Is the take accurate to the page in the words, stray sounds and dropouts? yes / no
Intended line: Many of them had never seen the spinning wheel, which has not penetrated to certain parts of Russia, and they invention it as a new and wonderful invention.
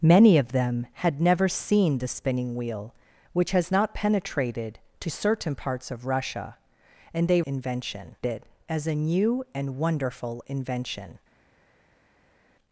yes